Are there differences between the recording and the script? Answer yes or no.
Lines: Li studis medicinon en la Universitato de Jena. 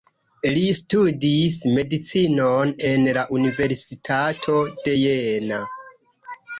no